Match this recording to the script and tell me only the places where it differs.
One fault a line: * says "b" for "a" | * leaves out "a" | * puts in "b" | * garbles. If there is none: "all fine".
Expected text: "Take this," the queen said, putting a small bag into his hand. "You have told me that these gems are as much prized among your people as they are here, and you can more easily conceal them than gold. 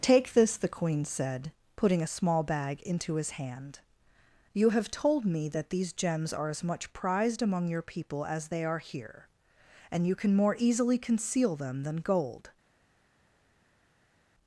all fine